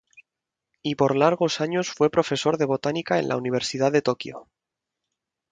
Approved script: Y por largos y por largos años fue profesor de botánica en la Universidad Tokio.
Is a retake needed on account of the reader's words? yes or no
yes